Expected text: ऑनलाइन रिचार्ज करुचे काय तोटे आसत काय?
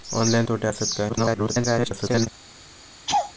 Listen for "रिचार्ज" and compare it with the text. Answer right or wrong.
wrong